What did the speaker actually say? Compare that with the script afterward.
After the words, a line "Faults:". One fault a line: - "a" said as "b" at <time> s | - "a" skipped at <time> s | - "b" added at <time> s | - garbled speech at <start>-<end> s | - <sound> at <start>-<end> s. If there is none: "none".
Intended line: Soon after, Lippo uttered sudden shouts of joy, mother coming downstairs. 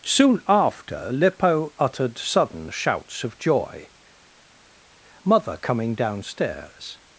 Soon after, Lippo uttered sudden shouts of joy, mother coming downstairs.
Faults:
none